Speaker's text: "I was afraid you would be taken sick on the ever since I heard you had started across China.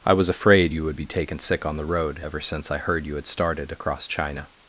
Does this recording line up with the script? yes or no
no